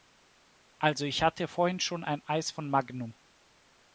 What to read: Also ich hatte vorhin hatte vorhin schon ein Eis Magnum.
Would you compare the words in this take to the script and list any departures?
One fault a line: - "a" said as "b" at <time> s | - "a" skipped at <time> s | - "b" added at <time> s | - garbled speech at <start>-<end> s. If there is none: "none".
- "hatte vorhin" skipped at 1.8 s
- "von" added at 2.5 s